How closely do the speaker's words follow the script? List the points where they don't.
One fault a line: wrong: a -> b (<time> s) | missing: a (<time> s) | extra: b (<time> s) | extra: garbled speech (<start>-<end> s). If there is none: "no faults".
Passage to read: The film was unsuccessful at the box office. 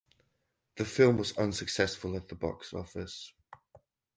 no faults